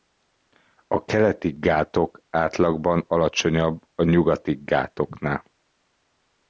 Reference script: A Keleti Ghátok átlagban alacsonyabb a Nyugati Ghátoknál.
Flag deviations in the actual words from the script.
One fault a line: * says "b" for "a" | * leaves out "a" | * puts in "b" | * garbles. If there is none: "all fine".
all fine